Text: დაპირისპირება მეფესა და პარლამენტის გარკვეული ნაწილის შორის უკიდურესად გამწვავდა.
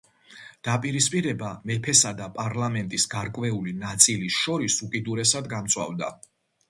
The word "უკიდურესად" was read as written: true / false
true